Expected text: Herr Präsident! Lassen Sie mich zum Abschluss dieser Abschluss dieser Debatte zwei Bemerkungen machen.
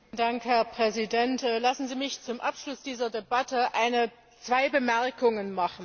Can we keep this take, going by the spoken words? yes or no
no